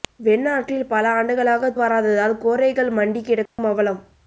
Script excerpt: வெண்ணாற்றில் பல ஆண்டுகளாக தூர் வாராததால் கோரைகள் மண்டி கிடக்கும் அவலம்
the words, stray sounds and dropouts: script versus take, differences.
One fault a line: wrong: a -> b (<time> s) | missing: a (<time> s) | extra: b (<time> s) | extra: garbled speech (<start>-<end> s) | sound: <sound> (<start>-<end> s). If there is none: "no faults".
missing: தூர் (1.7 s)
sound: dropout (3.5-3.6 s)